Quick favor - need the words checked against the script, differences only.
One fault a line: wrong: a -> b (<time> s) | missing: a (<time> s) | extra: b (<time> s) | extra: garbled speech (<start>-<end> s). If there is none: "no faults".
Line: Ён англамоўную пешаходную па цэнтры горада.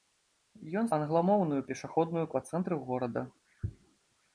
no faults